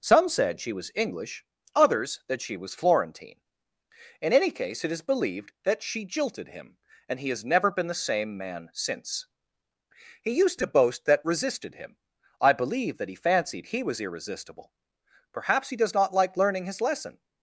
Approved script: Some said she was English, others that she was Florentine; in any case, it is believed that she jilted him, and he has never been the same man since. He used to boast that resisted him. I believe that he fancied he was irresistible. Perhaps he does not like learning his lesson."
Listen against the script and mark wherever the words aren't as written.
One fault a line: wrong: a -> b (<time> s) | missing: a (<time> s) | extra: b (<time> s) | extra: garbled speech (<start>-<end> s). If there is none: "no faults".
no faults